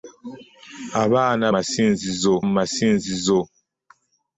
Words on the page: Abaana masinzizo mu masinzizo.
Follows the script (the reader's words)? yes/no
yes